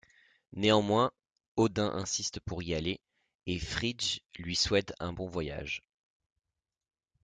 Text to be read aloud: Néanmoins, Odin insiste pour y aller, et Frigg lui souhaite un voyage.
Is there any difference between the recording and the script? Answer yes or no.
yes